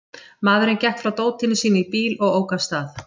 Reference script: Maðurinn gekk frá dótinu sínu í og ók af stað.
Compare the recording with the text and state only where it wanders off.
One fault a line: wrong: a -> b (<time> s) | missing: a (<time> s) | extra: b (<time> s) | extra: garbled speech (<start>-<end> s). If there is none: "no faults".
extra: bíl (1.9 s)